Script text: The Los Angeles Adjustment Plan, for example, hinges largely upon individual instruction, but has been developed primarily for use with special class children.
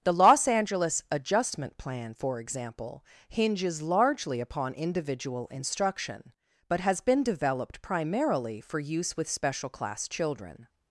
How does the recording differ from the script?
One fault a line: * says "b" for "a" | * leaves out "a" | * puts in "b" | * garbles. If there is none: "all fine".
all fine